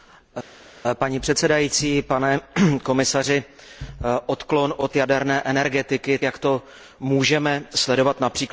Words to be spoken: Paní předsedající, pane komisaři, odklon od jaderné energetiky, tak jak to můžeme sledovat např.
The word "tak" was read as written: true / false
false